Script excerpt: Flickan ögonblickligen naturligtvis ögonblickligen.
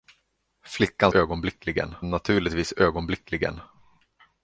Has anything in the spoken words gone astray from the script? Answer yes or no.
no